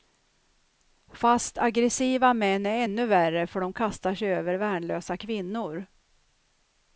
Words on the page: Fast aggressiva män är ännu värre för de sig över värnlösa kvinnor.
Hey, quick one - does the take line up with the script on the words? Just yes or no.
no